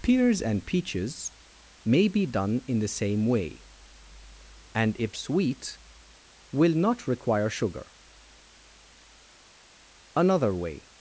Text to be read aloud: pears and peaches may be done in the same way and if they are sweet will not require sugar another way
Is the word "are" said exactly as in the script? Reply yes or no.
no